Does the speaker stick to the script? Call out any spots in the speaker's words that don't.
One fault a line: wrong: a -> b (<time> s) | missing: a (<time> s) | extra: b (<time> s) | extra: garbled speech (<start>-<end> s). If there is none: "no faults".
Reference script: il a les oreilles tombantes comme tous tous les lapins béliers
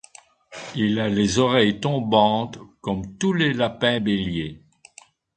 missing: tous (3.3 s)